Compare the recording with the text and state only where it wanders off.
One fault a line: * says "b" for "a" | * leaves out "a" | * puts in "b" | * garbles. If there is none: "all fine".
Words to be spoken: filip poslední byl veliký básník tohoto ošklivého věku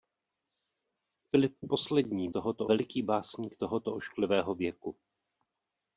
* says "tohoto" for "byl"